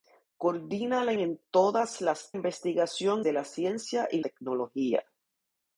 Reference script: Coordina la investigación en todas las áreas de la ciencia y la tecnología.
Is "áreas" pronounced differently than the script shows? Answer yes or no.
yes